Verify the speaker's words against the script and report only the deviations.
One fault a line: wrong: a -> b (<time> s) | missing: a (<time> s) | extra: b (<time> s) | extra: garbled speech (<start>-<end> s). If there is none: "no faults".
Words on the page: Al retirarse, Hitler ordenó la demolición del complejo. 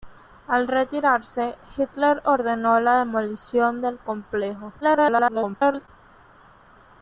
extra: garbled speech (4.8-5.9 s)